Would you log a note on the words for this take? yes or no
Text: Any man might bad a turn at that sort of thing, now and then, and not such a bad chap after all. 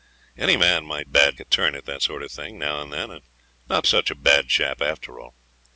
no